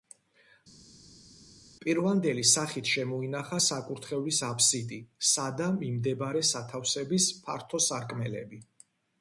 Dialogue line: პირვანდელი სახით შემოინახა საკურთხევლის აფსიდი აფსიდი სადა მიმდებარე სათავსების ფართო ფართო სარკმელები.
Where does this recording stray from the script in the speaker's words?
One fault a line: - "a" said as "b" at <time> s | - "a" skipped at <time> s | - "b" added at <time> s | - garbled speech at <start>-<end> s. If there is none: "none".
- "აფსიდი" skipped at 5.0 s
- "ფართო" skipped at 7.8 s